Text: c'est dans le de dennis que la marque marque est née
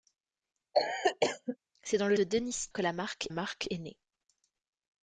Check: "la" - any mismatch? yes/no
no